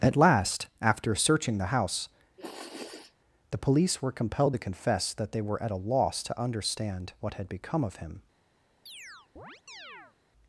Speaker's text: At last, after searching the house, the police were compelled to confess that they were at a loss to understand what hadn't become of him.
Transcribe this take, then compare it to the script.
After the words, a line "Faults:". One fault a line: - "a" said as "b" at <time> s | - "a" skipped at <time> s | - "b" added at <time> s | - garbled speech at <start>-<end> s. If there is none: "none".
At last, after searching the house, the police were compelled to confess that they were at a loss to understand what had become of him.
Faults:
- "hadn't" said as "had" at 7.3 s